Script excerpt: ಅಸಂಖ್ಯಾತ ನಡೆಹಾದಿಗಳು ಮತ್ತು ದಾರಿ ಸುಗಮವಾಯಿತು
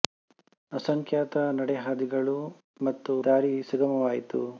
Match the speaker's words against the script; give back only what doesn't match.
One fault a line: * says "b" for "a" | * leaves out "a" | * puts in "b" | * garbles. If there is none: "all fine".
all fine